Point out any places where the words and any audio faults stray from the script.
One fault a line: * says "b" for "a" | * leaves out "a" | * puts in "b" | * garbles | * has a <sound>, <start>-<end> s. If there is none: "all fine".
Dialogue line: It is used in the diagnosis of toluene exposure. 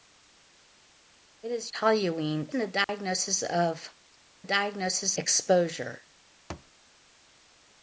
* says "toluene" for "used"
* has a dropout, 2.8-2.9 s
* says "diagnosis" for "toluene"
* has a thud, 6.5-6.7 s